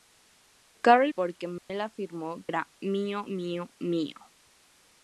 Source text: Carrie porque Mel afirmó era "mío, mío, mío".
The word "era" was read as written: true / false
true